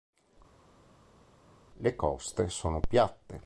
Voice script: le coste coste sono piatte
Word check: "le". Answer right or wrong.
right